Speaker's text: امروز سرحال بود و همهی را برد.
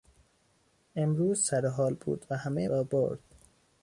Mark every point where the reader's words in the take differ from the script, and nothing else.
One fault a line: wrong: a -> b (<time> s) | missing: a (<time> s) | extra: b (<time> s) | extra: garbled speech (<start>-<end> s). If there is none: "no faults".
no faults